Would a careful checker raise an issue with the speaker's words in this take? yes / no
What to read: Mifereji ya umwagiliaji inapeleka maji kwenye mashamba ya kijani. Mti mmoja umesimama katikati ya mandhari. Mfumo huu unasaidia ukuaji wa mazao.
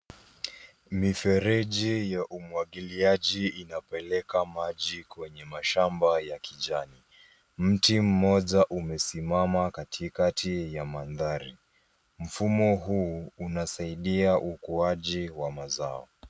no